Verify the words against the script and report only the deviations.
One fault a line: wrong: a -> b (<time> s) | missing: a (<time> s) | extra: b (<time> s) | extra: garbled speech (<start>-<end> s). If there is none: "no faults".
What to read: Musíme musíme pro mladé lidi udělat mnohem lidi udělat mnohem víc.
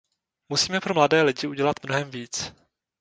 missing: musíme (0.8 s)
missing: lidi udělat mnohem (2.1 s)